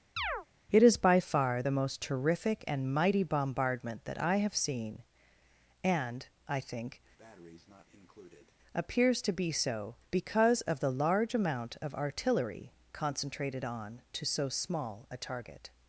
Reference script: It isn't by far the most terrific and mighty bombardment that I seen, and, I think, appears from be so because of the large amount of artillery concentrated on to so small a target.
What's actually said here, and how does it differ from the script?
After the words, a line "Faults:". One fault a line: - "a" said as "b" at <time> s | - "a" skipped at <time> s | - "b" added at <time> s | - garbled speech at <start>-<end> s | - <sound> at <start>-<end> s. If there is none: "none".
It is by far the most terrific and mighty bombardment that I have seen, and, I think, appears to be so because of the large amount of artillery concentrated on to so small a target.
Faults:
- chirp at 0.2-0.5 s
- "isn't" said as "is" at 0.8 s
- "have" added at 4.4 s
- breath at 7.2-8.6 s
- "from" said as "to" at 9.2 s